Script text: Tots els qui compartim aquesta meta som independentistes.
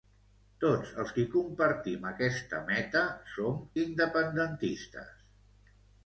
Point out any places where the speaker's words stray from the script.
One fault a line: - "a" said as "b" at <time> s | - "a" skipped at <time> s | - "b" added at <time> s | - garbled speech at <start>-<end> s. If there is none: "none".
none